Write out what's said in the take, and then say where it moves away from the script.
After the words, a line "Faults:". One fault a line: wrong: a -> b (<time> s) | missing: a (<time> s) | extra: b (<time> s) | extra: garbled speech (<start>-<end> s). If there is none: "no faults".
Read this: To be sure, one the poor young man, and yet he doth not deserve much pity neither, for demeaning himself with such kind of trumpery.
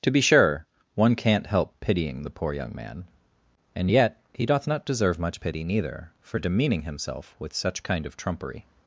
To be sure, one can't help pitying the poor young man, and yet he doth not deserve much pity neither, for demeaning himself with such kind of trumpery.
Faults:
extra: can't help pitying (1.1 s)